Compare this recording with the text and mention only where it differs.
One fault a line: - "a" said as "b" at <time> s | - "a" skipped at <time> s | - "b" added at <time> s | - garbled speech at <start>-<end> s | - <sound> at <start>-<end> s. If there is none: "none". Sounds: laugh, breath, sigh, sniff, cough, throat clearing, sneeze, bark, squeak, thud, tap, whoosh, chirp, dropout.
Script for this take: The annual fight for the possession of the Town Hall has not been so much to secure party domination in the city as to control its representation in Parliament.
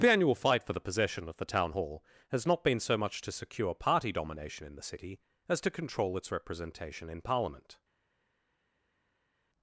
none